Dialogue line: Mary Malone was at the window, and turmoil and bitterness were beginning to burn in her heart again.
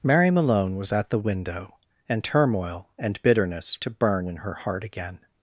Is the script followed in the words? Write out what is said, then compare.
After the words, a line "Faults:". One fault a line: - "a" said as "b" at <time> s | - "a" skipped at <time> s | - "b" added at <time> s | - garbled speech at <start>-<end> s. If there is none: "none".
Mary Malone was at the window, and turmoil and bitterness to burn in her heart again.
Faults:
- "were beginning" skipped at 3.8 s